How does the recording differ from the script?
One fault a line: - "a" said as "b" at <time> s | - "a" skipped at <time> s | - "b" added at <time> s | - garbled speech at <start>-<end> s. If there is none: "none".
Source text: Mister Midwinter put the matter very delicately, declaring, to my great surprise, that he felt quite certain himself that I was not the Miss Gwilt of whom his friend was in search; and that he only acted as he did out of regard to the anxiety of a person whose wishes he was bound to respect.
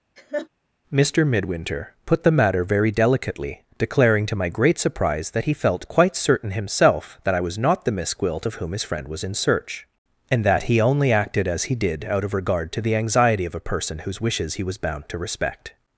none